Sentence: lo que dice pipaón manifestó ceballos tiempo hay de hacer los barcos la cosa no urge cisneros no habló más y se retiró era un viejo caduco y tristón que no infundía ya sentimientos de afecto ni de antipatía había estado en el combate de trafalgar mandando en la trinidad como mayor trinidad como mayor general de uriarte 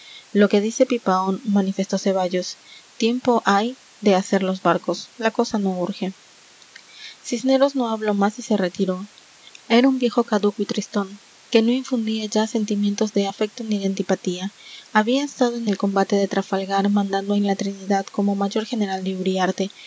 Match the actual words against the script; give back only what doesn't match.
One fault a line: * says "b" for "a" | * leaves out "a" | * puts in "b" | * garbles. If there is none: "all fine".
* leaves out "trinidad como mayor"